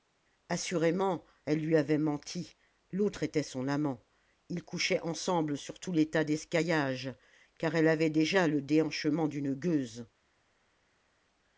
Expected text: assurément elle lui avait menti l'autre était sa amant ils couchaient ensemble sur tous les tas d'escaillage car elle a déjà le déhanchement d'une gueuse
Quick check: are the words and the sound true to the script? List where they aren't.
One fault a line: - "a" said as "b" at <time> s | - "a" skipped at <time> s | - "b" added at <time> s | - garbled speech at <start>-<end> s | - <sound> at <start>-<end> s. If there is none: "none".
- "sa" said as "son" at 3.4 s
- "a" said as "avait" at 7.9 s